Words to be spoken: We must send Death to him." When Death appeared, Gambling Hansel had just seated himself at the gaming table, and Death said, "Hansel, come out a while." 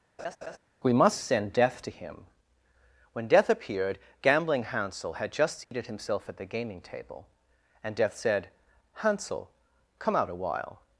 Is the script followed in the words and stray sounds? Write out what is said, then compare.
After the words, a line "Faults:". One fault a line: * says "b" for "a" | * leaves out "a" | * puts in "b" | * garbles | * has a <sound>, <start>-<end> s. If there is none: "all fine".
We must send Death to him." When Death appeared, Gambling Hansel had just seated himself at the gaming table, and Death said, "Hansel, come out a while."
Faults:
* has a laugh, 0.2-0.6 s
* has a dropout, 5.6-5.7 s